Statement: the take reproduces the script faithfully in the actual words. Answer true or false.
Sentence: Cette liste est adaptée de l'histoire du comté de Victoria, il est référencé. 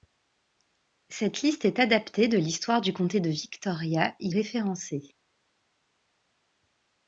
true